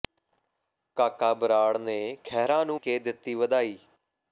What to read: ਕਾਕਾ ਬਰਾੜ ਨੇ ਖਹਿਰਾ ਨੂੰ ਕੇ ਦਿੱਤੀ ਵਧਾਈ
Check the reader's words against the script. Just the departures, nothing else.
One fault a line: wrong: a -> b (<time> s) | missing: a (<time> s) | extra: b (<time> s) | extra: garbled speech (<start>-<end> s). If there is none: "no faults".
no faults